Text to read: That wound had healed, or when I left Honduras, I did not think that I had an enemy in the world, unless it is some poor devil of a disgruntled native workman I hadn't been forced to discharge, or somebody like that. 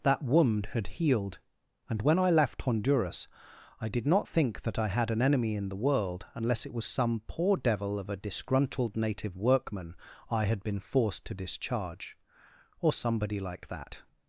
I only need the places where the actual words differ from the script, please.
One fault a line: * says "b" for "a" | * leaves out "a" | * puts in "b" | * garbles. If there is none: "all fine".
* says "and" for "or"
* says "was" for "is"
* says "had" for "hadn't"